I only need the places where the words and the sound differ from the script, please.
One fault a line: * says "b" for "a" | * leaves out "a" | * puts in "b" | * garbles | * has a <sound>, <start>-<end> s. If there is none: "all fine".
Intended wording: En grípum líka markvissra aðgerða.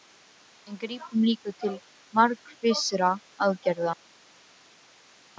* puts in "til"